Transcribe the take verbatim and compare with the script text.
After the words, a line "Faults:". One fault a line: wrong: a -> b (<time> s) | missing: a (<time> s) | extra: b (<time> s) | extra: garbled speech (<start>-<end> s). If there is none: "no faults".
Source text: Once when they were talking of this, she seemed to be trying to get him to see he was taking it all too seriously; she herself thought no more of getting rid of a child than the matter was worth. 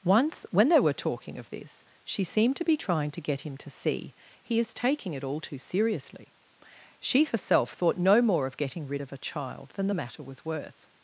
Once when they were talking of this, she seemed to be trying to get him to see he is taking it all too seriously; she herself thought no more of getting rid of a child than the matter was worth.
Faults:
wrong: was -> is (4.6 s)